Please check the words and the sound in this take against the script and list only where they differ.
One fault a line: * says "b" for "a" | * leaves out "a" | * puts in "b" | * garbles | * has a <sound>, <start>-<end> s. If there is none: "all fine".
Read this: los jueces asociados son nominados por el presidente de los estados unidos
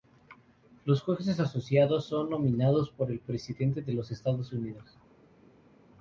all fine